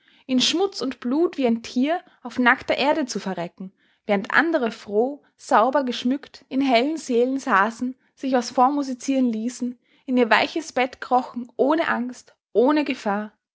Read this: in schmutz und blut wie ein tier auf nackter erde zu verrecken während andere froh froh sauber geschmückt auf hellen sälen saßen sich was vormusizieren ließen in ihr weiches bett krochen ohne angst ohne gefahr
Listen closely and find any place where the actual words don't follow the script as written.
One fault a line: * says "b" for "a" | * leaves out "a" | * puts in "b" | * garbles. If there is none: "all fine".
* leaves out "froh"
* says "in" for "auf"